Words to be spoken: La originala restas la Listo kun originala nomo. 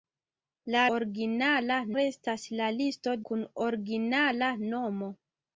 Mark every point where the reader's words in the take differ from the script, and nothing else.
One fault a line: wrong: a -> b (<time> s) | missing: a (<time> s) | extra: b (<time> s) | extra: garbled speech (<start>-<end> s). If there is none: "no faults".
no faults